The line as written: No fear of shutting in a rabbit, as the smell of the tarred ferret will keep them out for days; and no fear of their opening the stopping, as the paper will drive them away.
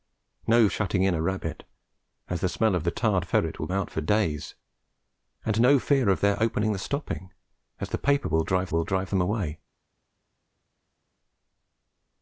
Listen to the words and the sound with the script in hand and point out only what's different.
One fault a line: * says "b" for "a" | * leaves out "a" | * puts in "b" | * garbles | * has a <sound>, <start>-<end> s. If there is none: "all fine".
* leaves out "fear of"
* leaves out "keep them"
* puts in "will drive"